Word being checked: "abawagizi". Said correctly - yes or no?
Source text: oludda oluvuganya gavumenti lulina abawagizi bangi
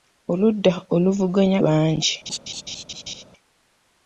no